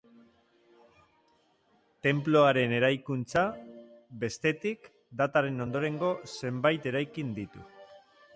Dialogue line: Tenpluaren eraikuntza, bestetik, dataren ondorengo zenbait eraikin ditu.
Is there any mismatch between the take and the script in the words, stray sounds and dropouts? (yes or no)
no